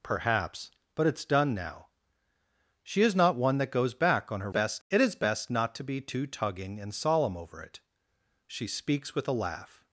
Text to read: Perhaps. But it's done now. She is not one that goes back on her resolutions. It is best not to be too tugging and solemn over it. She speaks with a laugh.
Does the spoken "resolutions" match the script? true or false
false